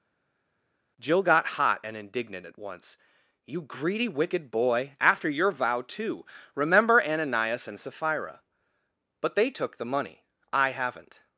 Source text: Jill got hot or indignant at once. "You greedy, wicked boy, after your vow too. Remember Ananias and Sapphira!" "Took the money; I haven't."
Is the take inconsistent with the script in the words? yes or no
yes